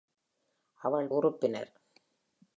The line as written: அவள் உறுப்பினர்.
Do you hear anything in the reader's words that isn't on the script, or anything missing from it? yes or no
no